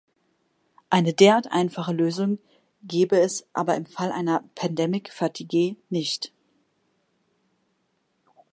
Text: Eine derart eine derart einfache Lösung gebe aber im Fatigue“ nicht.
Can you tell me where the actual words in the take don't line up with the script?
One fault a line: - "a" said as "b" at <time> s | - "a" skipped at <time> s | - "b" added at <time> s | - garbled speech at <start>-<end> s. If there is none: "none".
- "eine derart" skipped at 1.5 s
- "es" added at 3.2 s
- "Fall einer Pandemic" added at 3.9 s